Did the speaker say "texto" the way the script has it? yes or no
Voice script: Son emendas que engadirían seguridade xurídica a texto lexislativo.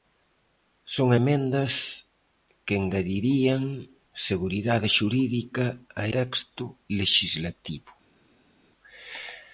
yes